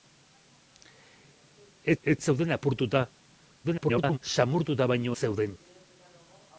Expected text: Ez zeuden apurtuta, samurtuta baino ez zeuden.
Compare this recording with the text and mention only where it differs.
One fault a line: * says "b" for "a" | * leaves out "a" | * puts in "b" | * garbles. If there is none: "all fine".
* puts in "ez"
* garbles
* leaves out "ez"